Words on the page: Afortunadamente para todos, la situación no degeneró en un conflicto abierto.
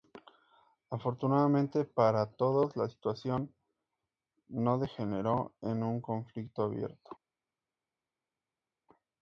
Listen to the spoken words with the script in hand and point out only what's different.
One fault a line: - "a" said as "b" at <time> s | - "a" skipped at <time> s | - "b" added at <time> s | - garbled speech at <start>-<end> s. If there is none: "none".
none